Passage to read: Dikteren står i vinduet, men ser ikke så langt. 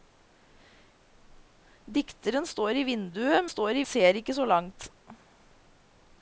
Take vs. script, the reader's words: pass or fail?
fail